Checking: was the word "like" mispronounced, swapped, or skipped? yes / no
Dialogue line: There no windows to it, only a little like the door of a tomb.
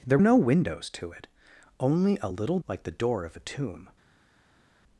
no